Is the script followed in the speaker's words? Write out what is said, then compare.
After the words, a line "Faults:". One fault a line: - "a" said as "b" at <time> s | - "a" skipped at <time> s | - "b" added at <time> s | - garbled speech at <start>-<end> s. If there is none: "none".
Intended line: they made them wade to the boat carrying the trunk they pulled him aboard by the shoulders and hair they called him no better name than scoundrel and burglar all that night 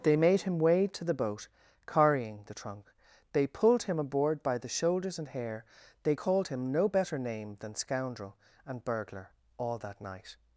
they made him wade to the boat carrying the trunk they pulled him aboard by the shoulders and hair they called him no better name than scoundrel and burglar all that night
Faults:
- "them" said as "him" at 0.4 s